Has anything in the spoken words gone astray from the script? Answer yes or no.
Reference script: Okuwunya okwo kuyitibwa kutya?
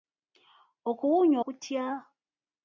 yes